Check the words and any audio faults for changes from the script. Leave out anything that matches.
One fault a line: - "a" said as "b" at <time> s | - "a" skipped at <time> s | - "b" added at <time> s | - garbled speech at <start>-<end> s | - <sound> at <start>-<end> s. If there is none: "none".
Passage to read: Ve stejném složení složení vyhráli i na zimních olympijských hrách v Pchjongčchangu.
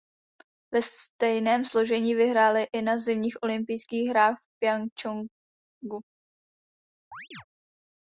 - "složení" skipped at 2.1 s
- chirp at 7.1-7.4 s